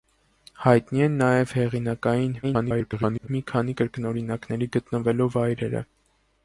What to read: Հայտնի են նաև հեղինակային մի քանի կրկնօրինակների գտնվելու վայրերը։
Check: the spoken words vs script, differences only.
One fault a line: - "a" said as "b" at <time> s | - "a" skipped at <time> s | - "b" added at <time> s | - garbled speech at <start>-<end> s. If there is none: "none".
- garbled speech at 2.4-3.3 s